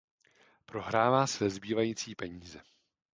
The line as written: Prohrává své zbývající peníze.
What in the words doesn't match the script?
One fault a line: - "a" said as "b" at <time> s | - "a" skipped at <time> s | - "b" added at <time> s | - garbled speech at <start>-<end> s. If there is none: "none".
none